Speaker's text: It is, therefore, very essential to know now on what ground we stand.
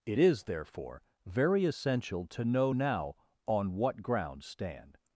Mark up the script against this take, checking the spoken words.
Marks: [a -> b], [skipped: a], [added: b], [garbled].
It is, therefore, very essential to know now on what ground [skipped: we] stand.